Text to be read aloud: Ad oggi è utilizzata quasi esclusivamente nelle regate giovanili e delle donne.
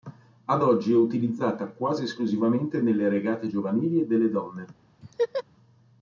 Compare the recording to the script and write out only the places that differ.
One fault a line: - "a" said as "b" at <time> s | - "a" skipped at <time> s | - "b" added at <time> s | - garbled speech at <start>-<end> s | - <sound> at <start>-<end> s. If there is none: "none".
- laugh at 5.0-5.4 s